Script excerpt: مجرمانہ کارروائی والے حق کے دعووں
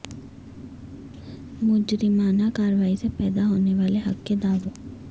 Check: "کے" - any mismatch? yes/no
no